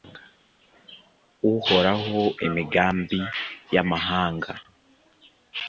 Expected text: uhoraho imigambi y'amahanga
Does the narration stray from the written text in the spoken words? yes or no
no